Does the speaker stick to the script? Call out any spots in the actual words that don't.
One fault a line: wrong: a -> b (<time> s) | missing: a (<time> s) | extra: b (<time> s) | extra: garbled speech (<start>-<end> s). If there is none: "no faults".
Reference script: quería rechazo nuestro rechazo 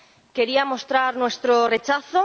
wrong: rechazo -> mostrar (0.7 s)